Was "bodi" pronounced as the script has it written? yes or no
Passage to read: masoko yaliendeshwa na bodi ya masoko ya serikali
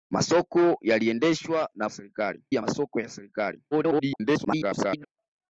no